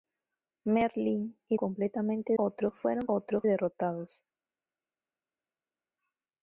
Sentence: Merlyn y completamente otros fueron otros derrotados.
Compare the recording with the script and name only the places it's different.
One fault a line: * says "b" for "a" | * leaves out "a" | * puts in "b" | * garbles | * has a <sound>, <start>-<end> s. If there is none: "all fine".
all fine